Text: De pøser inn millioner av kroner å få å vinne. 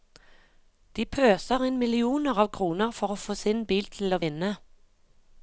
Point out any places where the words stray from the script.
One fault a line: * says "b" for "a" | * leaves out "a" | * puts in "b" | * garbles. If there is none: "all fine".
* puts in "for"
* puts in "sin bil til"